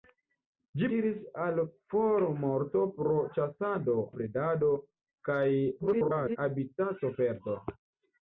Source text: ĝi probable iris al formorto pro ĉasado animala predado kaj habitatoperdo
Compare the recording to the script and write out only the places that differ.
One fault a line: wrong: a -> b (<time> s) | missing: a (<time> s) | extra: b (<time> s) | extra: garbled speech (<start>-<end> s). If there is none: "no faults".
missing: probable (0.9 s)
missing: animala (4.0 s)
extra: garbled speech (5.8-6.4 s)